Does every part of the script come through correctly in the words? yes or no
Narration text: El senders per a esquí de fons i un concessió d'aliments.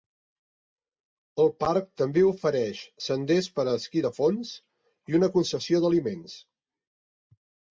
no